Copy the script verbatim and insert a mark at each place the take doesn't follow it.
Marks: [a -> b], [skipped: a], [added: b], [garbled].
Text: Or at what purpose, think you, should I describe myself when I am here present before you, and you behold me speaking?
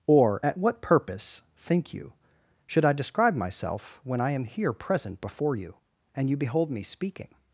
Or at what purpose, think you, should I describe myself when I am here present before you, and you behold me speaking?